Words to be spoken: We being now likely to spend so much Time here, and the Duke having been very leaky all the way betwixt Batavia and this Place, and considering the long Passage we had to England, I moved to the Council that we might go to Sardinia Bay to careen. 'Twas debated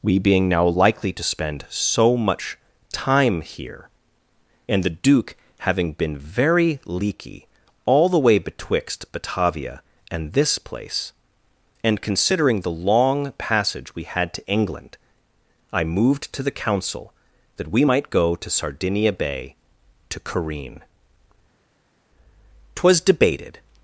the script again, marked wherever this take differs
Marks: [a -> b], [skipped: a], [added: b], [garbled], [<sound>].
We being now likely to spend so much Time here, and the Duke having been very leaky all the way betwixt Batavia and this Place, and considering the long Passage we had to England, I moved to the Council that we might go to Sardinia Bay to careen. 'Twas debated